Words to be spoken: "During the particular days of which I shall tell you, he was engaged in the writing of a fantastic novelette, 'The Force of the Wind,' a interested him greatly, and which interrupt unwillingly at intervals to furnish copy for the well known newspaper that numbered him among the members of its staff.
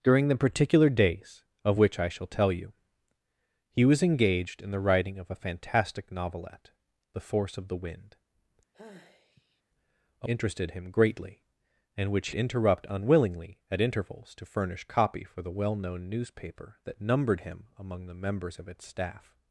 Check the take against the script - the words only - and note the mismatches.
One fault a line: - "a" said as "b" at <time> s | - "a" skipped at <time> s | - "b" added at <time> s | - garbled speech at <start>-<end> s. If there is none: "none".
none